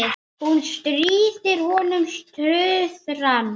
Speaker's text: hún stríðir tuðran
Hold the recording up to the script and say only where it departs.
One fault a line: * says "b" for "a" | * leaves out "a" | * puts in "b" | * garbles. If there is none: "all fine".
* puts in "honum"